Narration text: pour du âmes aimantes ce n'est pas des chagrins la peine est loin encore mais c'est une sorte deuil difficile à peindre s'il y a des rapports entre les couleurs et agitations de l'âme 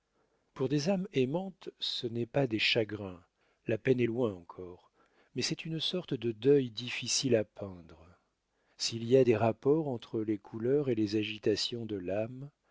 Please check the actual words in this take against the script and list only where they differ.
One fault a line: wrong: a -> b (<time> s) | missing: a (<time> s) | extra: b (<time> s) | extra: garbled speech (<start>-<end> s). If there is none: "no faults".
wrong: du -> des (0.7 s)
extra: de (6.1 s)
extra: les (10.9 s)